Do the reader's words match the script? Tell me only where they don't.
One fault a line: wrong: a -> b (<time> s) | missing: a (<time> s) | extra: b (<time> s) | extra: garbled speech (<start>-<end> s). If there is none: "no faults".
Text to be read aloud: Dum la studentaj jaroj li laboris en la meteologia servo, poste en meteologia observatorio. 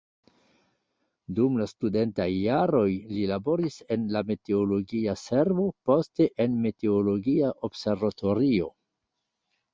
no faults